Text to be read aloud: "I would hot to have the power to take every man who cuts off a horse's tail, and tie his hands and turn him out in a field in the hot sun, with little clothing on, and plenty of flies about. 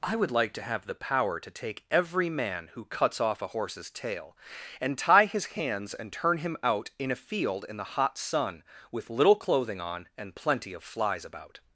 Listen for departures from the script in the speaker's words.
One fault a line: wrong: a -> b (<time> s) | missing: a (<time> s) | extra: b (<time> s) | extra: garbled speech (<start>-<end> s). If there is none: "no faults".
wrong: hot -> like (0.3 s)